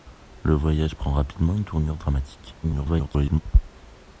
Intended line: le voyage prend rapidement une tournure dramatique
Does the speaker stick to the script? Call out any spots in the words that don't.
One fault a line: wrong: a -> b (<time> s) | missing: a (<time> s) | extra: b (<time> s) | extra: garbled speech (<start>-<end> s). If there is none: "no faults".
extra: garbled speech (2.6-3.4 s)